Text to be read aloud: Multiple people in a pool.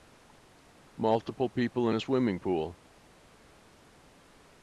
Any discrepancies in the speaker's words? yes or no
yes